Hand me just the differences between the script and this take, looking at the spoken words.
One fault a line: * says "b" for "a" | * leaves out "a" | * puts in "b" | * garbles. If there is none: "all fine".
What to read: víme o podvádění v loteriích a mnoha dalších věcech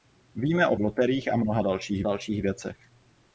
* leaves out "podvádění"
* puts in "dalších"